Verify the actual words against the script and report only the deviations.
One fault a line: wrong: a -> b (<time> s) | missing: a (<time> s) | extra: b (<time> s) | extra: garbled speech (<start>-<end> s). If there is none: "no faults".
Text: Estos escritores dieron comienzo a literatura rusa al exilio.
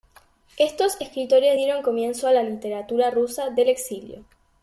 extra: la (2.3 s)
wrong: al -> del (3.5 s)